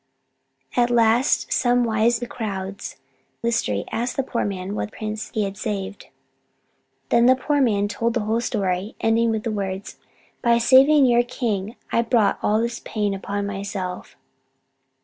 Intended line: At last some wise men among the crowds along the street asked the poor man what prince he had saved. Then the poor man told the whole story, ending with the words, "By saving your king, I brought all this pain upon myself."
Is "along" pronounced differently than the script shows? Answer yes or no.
yes